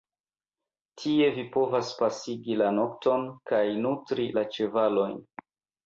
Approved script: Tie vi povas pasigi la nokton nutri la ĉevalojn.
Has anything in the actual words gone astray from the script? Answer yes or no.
yes